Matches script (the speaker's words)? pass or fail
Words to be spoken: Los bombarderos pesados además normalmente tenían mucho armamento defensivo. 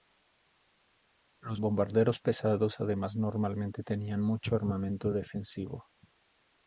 pass